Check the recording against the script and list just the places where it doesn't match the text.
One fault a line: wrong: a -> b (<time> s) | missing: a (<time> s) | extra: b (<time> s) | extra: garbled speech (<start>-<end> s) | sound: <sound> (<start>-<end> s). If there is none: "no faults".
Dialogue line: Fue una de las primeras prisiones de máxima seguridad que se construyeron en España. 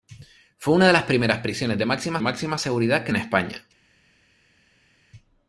extra: máxima (2.2 s)
missing: se construyeron (3.1 s)